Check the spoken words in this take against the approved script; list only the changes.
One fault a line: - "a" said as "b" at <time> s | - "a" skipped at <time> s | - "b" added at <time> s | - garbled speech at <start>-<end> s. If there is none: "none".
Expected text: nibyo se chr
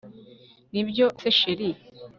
none